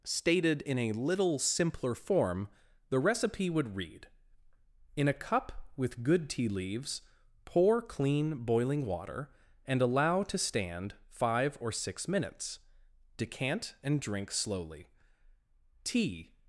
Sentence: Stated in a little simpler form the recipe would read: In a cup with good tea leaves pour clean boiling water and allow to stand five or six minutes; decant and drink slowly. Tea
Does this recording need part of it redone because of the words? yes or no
no